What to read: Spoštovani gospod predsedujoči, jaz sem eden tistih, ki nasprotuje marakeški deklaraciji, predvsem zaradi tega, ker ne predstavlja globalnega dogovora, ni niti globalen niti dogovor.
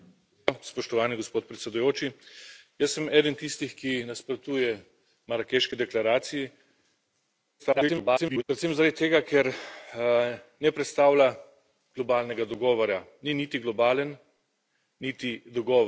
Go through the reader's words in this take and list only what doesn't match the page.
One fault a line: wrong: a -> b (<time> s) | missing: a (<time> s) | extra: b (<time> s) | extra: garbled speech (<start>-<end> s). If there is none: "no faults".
extra: garbled speech (7.6-8.4 s)